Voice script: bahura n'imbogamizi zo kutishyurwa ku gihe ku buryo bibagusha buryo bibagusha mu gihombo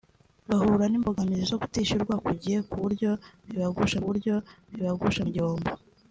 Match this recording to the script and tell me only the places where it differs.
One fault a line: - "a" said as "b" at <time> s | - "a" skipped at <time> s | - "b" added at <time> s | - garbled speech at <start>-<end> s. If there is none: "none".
none